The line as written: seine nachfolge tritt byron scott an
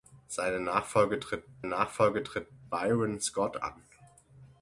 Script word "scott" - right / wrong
right